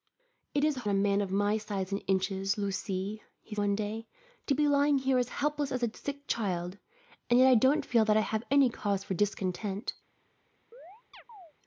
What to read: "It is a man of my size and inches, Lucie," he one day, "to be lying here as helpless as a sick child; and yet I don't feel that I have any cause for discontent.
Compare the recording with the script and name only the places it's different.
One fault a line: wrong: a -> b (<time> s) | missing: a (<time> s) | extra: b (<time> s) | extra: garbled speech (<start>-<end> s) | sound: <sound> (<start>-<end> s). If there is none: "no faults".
sound: chirp (10.7-11.5 s)